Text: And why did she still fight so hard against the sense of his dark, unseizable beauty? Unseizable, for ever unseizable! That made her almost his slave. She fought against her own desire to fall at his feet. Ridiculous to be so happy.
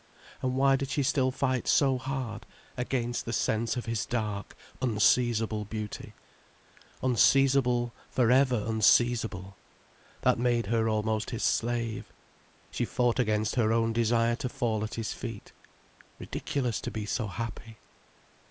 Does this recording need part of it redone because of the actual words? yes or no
no